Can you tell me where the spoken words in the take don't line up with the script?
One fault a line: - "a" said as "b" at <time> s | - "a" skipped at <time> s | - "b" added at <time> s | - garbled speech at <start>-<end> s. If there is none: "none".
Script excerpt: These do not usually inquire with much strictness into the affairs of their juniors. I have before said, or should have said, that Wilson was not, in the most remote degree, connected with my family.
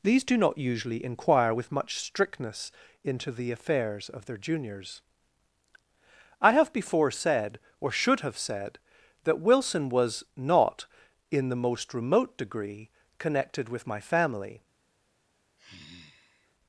none